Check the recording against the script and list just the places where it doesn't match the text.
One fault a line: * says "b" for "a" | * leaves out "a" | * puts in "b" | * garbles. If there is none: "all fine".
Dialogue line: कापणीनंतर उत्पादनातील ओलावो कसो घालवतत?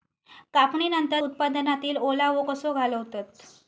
all fine